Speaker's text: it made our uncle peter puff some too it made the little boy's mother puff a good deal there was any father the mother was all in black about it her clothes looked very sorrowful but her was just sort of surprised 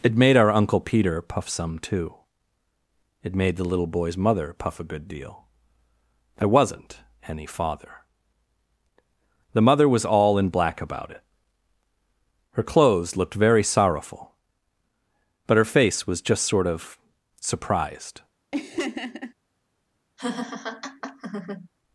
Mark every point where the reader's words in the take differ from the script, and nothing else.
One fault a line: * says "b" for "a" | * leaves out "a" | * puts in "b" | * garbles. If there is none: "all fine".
* says "wasn't" for "was"
* puts in "face"